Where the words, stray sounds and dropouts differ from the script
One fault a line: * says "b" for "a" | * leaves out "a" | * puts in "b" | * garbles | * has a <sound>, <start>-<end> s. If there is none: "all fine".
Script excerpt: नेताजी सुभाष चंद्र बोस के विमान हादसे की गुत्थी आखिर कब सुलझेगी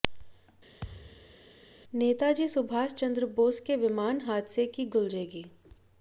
* has a thud, 0.8-1.4 s
* leaves out "गुत्थी आखिर कब"